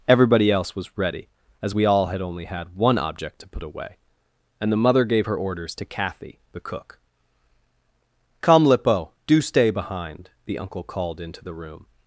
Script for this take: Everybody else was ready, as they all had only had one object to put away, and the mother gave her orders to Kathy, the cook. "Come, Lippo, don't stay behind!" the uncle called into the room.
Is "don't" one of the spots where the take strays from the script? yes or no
yes